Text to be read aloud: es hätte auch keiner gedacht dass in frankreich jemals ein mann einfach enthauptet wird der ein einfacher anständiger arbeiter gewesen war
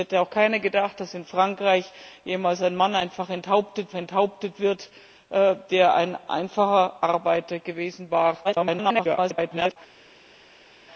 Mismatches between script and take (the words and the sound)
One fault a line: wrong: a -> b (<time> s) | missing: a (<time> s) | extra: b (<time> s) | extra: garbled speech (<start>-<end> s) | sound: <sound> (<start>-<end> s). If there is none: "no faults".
extra: enthauptet (3.9 s)
missing: anständiger (7.0 s)
extra: garbled speech (8.4-9.8 s)